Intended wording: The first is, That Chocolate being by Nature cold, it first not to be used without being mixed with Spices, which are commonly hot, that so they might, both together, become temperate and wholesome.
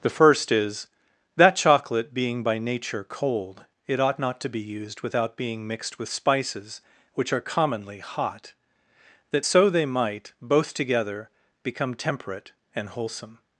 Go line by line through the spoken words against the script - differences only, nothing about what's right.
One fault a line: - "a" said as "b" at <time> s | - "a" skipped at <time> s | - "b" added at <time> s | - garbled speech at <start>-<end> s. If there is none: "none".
- "first" said as "ought" at 4.0 s